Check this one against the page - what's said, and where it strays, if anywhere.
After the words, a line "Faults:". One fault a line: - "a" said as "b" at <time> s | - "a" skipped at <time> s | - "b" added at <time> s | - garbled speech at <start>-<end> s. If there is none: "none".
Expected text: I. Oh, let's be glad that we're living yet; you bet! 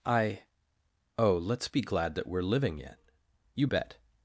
I. Oh, let's be glad that we're living yet; you bet!
Faults:
none